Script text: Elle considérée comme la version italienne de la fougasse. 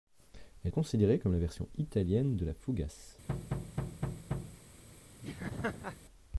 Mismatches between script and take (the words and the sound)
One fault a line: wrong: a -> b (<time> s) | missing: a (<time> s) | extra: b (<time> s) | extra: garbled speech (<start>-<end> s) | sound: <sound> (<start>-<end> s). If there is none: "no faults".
sound: thud (3.3-4.6 s)
sound: laugh (5.2-6.0 s)